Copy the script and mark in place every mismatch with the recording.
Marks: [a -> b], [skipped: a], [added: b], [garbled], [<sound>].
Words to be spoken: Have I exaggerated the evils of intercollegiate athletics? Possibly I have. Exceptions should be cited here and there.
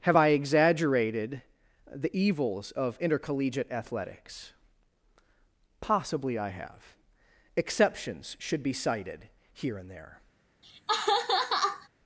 Have I exaggerated the evils of intercollegiate athletics? Possibly I have. Exceptions should be cited here and there. [laugh]